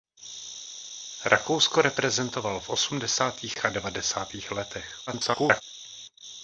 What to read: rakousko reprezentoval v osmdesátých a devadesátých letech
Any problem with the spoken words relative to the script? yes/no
yes